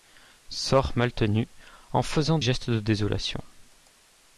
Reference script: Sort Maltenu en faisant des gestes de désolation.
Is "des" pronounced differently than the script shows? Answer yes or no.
yes